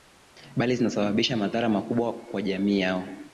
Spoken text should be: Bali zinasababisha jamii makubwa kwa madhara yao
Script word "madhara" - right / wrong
wrong